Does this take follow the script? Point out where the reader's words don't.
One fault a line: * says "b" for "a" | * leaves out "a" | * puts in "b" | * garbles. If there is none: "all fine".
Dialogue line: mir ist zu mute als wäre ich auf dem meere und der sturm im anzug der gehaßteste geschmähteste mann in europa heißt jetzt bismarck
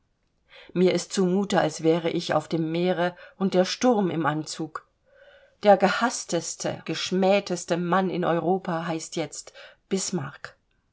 all fine